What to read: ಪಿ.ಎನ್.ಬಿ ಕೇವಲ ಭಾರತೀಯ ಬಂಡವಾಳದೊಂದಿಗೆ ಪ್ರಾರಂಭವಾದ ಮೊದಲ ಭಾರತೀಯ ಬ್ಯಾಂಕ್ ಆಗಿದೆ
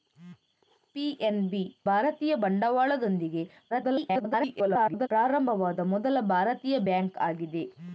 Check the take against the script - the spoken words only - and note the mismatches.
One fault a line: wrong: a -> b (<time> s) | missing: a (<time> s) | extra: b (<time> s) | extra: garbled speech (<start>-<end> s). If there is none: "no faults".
missing: ಕೇವಲ (1.6 s)
extra: garbled speech (3.7-5.1 s)